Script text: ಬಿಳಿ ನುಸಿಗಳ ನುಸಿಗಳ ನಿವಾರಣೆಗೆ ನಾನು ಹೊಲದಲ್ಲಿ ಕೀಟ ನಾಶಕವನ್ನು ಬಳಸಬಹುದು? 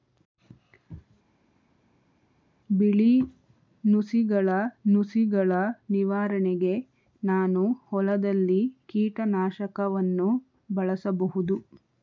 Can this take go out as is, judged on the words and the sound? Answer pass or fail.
pass